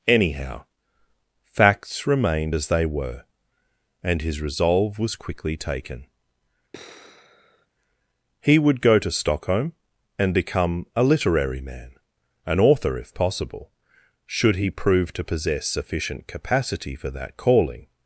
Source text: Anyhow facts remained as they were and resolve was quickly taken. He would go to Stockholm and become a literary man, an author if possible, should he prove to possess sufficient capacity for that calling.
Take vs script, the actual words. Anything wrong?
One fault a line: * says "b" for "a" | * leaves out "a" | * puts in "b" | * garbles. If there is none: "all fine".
* puts in "his"